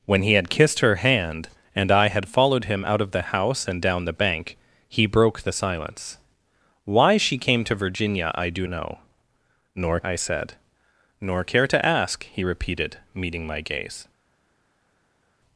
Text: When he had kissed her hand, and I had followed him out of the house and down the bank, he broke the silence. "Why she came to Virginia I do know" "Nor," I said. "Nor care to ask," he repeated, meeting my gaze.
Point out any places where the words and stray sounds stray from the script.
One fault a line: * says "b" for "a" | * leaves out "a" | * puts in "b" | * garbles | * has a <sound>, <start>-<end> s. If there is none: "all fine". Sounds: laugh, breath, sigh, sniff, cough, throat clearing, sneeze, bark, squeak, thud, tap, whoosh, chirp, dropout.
all fine